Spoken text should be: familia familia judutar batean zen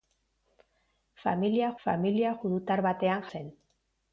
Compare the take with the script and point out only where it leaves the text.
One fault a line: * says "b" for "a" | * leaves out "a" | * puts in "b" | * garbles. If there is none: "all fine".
all fine